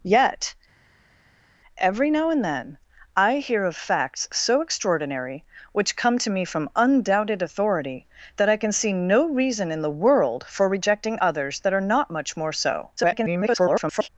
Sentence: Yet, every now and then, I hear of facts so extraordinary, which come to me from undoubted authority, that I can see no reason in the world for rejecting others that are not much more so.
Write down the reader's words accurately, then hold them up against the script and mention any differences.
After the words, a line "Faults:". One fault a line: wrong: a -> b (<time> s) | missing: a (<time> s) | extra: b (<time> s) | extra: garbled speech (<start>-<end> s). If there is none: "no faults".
Yet, every now and then, I hear of facts so extraordinary, which come to me from undoubted authority, that I can see no reason in the world for rejecting others that are not much more so. [garbled]
Faults:
extra: garbled speech (13.0-14.1 s)